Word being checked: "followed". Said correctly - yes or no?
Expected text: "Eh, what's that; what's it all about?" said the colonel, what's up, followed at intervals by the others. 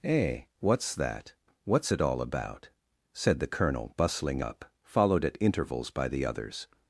yes